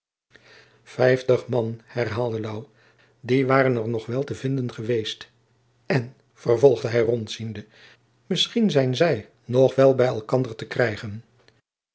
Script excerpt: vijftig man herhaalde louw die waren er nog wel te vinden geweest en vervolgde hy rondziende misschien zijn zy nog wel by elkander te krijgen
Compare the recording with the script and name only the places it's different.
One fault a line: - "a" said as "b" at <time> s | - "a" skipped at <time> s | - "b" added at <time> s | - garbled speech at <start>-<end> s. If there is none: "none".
none